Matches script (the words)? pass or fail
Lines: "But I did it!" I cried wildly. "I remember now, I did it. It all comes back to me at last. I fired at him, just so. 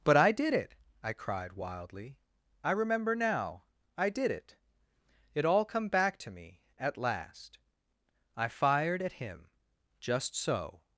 fail